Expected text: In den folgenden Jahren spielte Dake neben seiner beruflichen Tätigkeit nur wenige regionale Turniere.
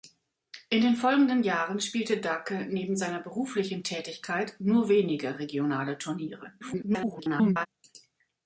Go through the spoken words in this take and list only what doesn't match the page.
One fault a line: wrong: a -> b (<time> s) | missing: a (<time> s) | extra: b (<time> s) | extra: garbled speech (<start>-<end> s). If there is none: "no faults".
extra: garbled speech (6.6-7.7 s)